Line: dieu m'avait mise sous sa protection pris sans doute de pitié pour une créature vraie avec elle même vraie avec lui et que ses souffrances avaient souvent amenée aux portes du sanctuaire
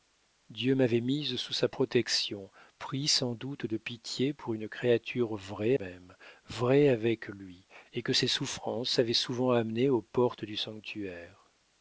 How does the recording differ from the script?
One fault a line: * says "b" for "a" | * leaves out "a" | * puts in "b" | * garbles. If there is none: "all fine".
* leaves out "avec elle"